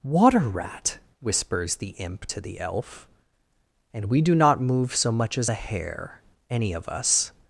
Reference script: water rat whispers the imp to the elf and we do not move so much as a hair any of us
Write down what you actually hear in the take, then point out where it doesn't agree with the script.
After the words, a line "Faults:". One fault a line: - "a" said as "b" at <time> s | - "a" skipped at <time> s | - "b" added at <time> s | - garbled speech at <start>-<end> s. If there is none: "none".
water rat whispers the imp to the elf and we do not move so much as a hair any of us
Faults:
none